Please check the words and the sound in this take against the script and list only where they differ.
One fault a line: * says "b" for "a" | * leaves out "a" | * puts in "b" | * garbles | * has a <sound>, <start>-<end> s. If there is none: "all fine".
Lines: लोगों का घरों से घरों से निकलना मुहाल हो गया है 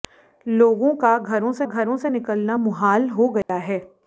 * has a dropout, 3.4-3.5 s